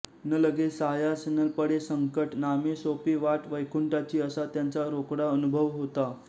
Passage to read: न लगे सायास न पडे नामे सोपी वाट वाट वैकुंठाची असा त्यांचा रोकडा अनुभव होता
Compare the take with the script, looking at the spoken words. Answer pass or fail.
fail